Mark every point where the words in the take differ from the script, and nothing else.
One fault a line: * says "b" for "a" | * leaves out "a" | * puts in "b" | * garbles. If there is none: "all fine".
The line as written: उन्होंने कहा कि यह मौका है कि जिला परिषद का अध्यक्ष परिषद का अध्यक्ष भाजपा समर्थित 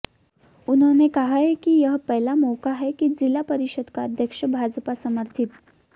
* puts in "पहला"
* leaves out "परिषद का अध्यक्ष"